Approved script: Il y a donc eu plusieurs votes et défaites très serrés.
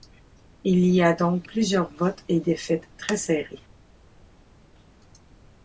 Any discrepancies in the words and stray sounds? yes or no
yes